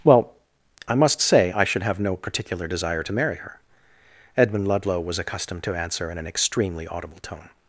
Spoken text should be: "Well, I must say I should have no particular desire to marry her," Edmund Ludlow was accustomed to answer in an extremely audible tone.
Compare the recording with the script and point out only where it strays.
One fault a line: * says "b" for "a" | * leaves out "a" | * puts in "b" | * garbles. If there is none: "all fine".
all fine